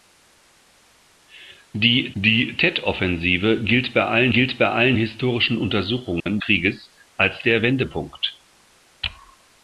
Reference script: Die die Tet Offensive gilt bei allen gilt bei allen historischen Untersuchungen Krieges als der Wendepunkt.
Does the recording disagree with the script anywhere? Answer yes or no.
no